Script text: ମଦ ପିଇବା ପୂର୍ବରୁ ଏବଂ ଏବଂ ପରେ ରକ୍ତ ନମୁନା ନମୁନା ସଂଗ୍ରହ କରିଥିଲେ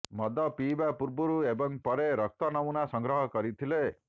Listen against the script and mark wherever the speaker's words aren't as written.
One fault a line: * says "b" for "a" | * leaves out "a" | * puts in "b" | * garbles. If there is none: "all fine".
* leaves out "ଏବଂ"
* leaves out "ନମୁନା"